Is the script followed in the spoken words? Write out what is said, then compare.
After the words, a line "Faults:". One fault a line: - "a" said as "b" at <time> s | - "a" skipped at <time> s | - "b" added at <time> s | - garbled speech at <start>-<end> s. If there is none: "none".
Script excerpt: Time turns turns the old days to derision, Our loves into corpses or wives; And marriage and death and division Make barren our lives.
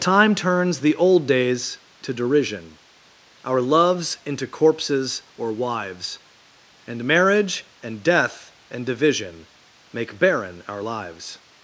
Time turns the old days to derision, Our loves into corpses or wives; And marriage and death and division Make barren our lives.
Faults:
- "turns" skipped at 0.8 s